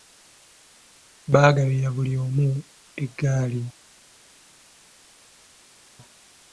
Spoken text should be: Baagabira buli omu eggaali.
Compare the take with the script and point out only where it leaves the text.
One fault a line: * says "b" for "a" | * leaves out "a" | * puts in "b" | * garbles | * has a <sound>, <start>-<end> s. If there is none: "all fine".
all fine